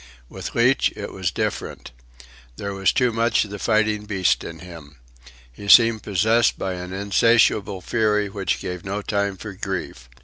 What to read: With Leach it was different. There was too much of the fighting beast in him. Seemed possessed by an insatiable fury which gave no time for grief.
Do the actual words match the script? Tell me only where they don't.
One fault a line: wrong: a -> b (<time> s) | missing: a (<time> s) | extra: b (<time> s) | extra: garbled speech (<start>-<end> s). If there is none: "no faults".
extra: He (5.5 s)